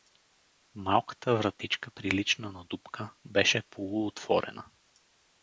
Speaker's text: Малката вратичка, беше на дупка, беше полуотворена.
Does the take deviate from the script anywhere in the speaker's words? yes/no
yes